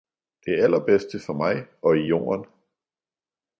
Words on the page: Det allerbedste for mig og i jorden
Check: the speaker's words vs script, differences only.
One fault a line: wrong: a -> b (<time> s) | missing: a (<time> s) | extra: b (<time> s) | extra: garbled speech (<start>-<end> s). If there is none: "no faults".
no faults